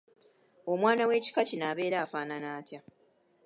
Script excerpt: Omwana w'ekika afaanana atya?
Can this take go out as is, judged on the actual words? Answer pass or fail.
fail